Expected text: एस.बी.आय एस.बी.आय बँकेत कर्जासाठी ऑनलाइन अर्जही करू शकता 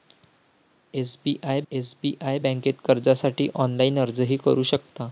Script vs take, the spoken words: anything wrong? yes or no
no